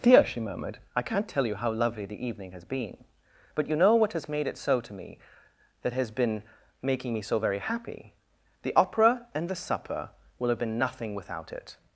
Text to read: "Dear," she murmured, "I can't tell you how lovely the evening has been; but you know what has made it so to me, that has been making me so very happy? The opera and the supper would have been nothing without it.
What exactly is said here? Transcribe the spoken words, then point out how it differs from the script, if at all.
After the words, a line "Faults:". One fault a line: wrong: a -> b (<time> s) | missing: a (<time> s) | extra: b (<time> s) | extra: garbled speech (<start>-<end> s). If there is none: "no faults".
"Dear," she murmured, "I can't tell you how lovely the evening has been; but you know what has made it so to me, that has been making me so very happy? The opera and the supper will have been nothing without it.
Faults:
wrong: would -> will (10.4 s)